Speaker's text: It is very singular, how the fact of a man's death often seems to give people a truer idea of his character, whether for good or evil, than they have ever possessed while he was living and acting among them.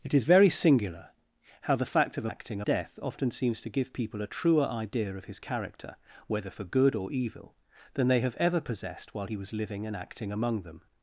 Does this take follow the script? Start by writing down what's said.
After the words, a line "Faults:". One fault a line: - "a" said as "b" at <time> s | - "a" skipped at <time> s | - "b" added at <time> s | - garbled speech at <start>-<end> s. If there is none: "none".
It is very singular, how the fact of a acting death often seems to give people a truer idea of his character, whether for good or evil, than they have ever possessed while he was living and acting among them.
Faults:
- "man's" said as "acting" at 2.2 s